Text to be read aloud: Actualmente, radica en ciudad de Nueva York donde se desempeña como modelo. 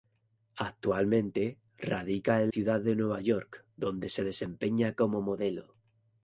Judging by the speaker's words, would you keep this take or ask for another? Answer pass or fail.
pass